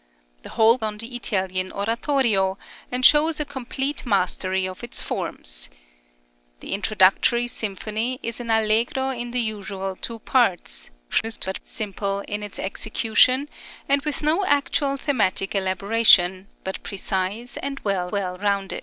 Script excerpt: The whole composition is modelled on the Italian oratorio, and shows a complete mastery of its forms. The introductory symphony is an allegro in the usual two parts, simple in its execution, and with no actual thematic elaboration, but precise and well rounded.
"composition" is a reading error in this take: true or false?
true